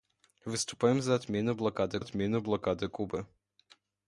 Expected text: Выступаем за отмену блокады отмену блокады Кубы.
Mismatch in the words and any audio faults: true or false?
false